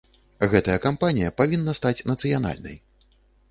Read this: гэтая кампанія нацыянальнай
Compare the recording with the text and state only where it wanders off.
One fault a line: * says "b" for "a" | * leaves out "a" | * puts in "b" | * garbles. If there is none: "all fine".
* puts in "павінна стаць"